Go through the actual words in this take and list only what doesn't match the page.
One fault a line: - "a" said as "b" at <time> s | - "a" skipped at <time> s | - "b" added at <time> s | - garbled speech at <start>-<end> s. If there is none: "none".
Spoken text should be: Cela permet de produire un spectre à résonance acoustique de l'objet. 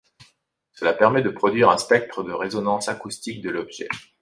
- "à" said as "de" at 2.2 s